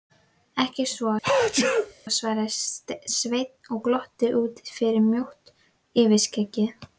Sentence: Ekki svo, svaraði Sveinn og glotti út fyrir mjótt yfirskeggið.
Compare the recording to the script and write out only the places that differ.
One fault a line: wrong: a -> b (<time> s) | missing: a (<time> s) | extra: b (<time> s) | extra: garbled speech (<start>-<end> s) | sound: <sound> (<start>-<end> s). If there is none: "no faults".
sound: sneeze (1.2-1.9 s)